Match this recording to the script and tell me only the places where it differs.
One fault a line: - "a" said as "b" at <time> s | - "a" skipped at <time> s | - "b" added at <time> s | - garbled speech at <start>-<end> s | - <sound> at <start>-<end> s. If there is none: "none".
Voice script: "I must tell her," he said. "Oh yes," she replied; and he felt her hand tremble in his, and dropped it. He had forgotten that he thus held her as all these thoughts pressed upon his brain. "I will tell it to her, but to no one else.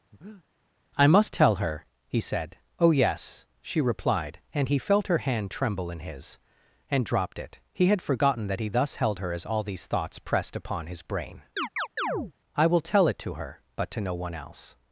- breath at 0.1-0.4 s
- chirp at 11.6-12.3 s